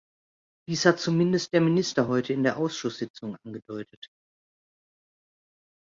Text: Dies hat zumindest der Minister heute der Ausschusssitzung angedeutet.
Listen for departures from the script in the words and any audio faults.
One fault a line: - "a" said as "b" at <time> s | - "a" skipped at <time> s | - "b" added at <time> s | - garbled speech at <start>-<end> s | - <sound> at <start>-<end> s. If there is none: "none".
- "in" added at 2.3 s